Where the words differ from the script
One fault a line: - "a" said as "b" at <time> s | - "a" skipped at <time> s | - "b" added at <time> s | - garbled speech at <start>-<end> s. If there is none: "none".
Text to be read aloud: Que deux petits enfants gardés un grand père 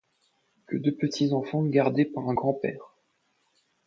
- "par" added at 2.0 s